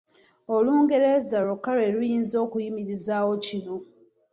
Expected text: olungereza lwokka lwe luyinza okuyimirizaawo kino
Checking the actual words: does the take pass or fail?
pass